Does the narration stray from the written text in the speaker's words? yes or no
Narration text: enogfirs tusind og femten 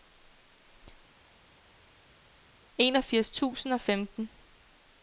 no